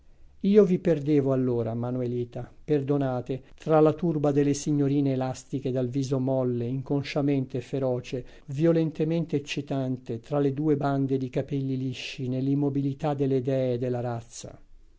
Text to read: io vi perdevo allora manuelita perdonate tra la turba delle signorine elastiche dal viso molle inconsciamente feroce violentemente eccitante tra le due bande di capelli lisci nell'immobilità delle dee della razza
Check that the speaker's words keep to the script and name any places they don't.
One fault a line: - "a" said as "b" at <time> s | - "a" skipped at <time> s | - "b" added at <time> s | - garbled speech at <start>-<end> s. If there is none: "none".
none